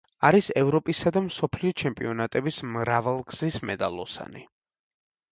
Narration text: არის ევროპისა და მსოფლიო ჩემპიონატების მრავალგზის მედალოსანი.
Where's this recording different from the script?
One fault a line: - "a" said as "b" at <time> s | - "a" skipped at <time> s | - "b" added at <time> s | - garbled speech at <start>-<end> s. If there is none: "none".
none